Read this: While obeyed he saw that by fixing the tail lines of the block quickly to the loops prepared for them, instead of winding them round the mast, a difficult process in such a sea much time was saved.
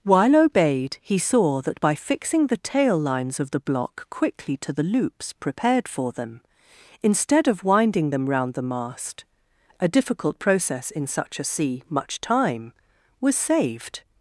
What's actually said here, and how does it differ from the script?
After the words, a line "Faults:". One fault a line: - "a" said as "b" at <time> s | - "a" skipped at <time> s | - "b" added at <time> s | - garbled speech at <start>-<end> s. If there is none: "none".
While obeyed he saw that by fixing the tail lines of the block quickly to the loops prepared for them, instead of winding them round the mast, a difficult process in such a sea much time was saved.
Faults:
none